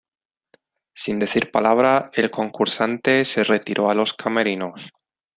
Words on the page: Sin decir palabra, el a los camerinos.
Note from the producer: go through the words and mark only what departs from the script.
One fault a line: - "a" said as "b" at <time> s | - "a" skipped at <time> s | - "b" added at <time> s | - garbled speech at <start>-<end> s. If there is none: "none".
- "concursante se retiró" added at 2.3 s